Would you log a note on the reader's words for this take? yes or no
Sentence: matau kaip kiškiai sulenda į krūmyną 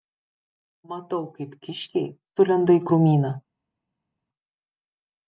no